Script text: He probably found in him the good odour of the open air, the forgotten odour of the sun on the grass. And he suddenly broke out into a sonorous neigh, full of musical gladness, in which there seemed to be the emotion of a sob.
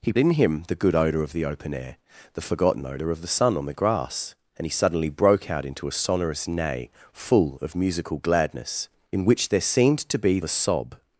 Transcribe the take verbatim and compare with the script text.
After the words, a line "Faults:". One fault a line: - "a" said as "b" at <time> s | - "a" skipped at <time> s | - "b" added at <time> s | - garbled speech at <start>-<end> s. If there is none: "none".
He in him the good odour of the open air, the forgotten odour of the sun on the grass. And he suddenly broke out into a sonorous neigh, full of musical gladness, in which there seemed to be a sob.
Faults:
- "probably found" skipped at 0.1 s
- "the emotion of" skipped at 10.4 s